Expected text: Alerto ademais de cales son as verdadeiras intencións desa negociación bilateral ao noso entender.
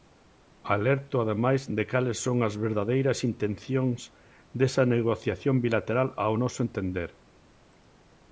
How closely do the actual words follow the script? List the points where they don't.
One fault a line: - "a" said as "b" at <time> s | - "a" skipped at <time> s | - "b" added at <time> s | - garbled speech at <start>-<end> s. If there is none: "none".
none